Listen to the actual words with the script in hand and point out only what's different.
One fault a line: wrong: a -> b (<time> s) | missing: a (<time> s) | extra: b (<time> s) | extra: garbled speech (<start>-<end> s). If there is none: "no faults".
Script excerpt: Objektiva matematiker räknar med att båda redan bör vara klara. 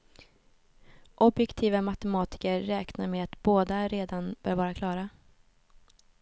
no faults